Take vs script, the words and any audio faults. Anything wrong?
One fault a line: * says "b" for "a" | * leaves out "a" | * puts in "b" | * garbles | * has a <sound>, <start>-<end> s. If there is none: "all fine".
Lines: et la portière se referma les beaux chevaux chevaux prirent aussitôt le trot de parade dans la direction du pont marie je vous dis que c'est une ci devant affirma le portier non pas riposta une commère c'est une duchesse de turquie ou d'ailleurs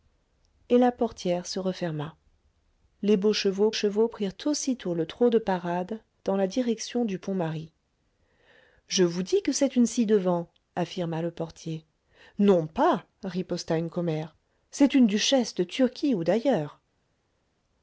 all fine